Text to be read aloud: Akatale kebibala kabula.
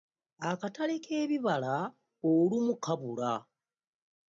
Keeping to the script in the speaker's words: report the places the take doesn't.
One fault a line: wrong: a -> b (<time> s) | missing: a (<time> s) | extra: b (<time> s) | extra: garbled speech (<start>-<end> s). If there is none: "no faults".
extra: olumu (2.3 s)